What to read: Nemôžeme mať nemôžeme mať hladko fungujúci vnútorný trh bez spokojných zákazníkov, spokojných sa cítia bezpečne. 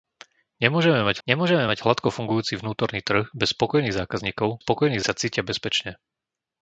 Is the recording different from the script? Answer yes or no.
no